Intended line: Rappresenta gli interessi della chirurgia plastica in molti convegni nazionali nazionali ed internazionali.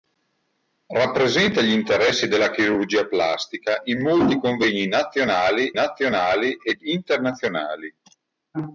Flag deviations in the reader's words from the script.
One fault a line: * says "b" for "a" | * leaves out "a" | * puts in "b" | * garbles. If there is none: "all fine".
all fine